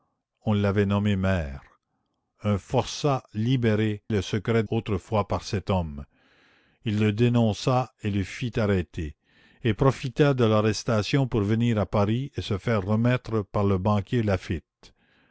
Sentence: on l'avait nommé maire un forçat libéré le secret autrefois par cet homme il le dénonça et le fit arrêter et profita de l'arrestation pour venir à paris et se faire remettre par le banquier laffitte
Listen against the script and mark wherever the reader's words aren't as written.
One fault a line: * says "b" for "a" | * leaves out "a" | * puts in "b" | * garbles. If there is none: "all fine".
all fine